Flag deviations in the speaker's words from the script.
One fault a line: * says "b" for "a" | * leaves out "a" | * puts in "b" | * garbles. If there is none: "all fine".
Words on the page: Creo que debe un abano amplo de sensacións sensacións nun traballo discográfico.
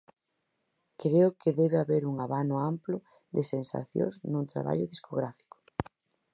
* puts in "haber"
* leaves out "sensacións"